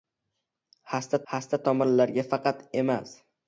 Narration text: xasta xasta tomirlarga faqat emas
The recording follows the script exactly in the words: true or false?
true